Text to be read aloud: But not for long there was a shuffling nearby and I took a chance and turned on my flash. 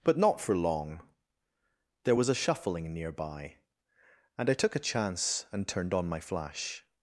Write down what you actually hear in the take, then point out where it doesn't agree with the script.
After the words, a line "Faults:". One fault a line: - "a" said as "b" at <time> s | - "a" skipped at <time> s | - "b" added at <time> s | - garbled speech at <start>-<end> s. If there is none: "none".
But not for long there was a shuffling nearby and I took a chance and turned on my flash.
Faults:
none